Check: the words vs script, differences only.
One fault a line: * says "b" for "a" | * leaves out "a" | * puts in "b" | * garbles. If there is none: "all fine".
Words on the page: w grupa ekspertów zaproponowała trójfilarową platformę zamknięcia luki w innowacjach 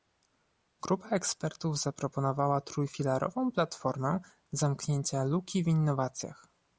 all fine